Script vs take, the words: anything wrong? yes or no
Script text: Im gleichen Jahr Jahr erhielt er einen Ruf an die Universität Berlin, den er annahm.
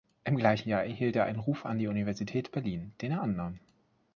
yes